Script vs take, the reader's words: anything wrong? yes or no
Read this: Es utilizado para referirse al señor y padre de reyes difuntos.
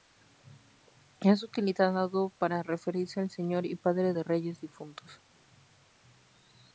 no